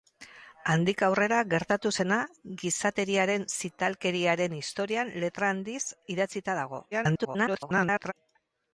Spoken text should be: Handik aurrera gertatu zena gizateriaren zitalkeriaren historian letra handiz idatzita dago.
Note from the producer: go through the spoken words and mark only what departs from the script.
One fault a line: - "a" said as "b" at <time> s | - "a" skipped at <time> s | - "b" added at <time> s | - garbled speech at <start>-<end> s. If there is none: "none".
- garbled speech at 6.9-8.1 s